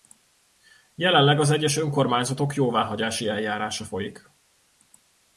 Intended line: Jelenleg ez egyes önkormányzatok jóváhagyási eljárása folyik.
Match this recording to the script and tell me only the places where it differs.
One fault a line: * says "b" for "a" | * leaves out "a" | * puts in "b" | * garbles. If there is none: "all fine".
* says "az" for "ez"